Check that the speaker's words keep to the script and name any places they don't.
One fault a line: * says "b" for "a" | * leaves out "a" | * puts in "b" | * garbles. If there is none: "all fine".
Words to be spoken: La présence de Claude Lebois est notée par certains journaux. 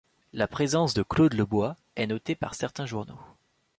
all fine